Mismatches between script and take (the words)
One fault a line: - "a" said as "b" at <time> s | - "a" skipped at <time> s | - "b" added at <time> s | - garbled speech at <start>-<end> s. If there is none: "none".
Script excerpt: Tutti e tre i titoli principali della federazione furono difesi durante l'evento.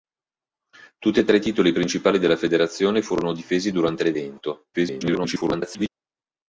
- garbled speech at 4.7-5.9 s